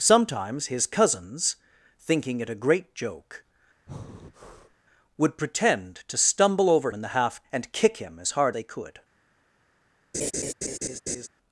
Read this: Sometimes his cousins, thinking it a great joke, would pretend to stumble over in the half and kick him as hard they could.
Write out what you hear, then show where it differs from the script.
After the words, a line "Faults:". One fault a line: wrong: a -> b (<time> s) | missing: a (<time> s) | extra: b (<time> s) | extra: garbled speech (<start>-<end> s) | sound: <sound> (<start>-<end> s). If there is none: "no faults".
Sometimes his cousins, thinking it a great joke, would pretend to stumble over in the half and kick him as hard they could.
Faults:
sound: breath (3.9-4.8 s)
sound: laugh (10.1-11.3 s)